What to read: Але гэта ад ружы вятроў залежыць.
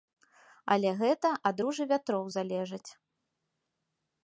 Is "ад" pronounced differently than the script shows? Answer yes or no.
no